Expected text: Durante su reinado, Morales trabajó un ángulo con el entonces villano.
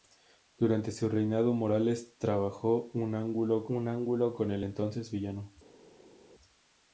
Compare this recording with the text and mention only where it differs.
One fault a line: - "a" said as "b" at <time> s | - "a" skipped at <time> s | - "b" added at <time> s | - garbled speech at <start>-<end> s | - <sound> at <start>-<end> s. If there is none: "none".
- "un ángulo" added at 3.7 s